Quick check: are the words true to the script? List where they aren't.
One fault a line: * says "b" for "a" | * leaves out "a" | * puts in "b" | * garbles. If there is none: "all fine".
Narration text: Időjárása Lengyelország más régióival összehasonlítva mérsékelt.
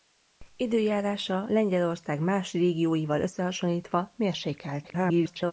* garbles